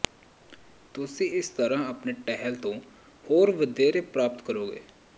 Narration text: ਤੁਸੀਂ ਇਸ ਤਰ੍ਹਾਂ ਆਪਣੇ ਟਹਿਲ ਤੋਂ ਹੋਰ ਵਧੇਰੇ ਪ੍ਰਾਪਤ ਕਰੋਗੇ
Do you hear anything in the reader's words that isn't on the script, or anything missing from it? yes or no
no